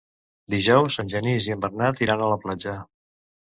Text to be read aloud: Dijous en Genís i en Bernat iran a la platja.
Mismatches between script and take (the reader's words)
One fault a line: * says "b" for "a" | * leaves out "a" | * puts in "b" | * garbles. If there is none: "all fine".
all fine